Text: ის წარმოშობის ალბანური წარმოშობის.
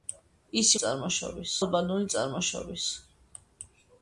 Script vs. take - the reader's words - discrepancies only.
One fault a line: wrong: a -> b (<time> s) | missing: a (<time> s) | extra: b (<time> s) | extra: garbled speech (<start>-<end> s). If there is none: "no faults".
no faults